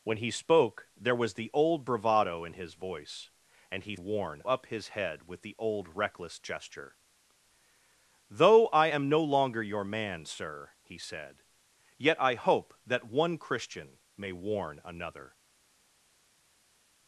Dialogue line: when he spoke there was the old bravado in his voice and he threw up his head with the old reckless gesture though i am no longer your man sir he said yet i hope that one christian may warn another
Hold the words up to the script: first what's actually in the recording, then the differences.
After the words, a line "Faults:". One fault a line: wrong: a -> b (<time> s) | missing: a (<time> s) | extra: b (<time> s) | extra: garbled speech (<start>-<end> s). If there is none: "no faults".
when he spoke there was the old bravado in his voice and he warn up his head with the old reckless gesture though i am no longer your man sir he said yet i hope that one christian may warn another
Faults:
wrong: threw -> warn (3.9 s)